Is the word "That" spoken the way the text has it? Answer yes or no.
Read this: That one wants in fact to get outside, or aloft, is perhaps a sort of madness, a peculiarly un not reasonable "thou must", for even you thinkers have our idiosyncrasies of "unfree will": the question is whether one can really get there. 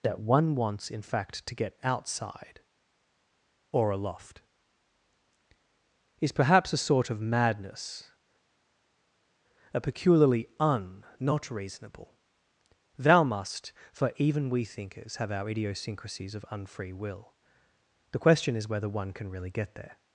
yes